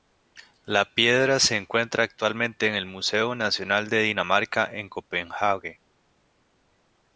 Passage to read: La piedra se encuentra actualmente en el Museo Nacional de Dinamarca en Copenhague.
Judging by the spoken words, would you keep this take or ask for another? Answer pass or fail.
pass